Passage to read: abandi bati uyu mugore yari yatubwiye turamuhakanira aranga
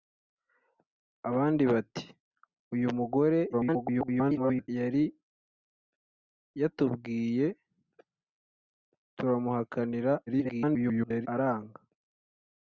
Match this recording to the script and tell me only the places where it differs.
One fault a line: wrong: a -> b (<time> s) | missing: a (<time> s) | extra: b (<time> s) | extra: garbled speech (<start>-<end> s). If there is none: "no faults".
extra: garbled speech (3.5-4.7 s)
extra: garbled speech (10.3-11.3 s)